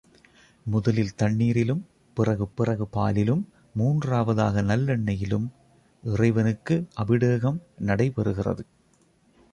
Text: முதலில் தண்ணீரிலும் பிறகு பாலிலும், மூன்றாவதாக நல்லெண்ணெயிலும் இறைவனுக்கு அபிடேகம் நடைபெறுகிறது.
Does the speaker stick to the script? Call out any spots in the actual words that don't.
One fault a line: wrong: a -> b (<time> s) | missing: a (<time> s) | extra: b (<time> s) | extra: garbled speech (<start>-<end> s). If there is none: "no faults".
extra: பிறகு (2.6 s)